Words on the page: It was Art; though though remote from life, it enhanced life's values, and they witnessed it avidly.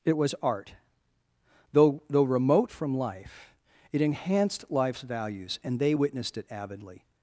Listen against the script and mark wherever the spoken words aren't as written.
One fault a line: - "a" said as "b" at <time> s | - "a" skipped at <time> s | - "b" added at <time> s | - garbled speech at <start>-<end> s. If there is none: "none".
none